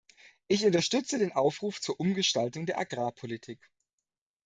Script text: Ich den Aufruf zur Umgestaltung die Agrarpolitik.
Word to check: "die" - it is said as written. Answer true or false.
false